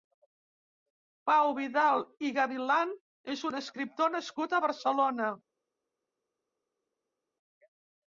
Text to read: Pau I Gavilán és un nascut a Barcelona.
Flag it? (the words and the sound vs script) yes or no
yes